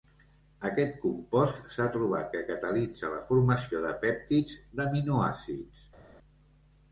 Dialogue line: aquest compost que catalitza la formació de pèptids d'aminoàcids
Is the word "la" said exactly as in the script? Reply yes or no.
yes